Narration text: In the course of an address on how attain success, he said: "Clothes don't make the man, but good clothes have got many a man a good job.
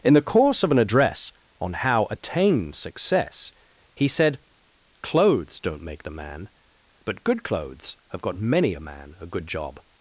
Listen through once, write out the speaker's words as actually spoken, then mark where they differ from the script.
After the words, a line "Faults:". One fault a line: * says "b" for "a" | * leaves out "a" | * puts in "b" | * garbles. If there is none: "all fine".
In the course of an address on how attain success, he said: "Clothes don't make the man, but good clothes have got many a man a good job.
Faults:
all fine